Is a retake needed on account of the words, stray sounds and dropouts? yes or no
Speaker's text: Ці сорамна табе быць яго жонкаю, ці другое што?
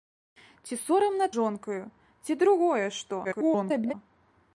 yes